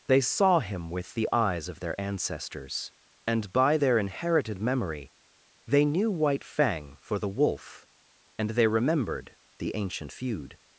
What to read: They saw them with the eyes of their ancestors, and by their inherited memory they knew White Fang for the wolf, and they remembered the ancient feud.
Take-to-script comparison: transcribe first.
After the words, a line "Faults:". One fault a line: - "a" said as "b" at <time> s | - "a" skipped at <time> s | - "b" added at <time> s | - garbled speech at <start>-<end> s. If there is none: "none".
They saw him with the eyes of their ancestors, and by their inherited memory they knew White Fang for the wolf, and they remembered the ancient feud.
Faults:
- "them" said as "him" at 0.6 s